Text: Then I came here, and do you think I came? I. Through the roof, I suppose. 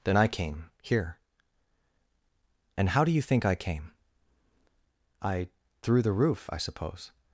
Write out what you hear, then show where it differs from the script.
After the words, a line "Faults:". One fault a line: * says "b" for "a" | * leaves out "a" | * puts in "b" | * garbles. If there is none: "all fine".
Then I came here, and how do you think I came? I. Through the roof, I suppose.
Faults:
* puts in "how"